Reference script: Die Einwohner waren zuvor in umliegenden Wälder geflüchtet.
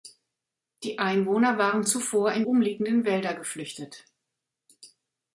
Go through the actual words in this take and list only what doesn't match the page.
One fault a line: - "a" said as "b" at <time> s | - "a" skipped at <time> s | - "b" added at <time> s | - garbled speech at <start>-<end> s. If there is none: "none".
none